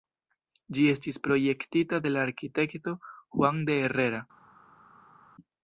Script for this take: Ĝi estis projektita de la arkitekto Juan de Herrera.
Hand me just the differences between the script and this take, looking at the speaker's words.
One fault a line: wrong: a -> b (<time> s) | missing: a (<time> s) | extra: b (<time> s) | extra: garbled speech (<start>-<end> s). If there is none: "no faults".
no faults